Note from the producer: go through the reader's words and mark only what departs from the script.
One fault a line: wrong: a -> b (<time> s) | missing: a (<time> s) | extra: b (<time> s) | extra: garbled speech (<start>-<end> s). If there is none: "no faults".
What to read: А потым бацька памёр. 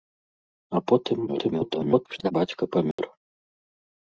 extra: garbled speech (1.3-2.3 s)